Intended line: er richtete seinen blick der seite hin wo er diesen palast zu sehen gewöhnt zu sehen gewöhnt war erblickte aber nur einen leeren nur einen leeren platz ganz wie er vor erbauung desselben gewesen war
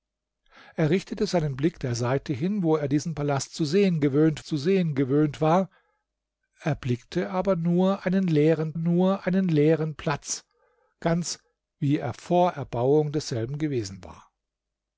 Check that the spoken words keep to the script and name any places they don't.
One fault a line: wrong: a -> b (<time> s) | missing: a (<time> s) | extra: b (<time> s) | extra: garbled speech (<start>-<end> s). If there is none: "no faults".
no faults